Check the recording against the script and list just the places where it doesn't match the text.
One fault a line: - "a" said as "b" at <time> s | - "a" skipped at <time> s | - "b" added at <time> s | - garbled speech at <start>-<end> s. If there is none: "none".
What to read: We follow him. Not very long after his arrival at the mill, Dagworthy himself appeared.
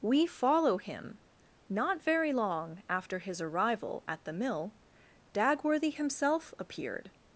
none